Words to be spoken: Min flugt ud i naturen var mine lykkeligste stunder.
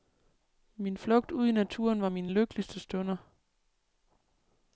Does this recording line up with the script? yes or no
yes